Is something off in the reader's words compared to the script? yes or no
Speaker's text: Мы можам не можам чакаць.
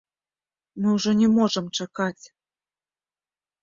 yes